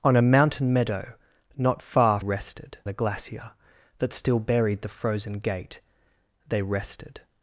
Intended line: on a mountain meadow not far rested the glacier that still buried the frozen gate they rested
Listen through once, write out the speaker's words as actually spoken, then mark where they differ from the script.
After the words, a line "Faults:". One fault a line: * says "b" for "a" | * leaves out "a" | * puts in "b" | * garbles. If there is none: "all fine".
on a mountain meadow not far rested the glacier that still buried the frozen gate they rested
Faults:
all fine